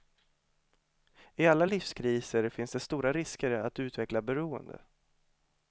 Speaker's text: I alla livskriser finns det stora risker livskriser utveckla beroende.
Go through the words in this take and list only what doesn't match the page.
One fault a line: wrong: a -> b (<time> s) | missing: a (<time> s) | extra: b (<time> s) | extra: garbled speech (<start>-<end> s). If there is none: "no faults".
wrong: livskriser -> att (3.5 s)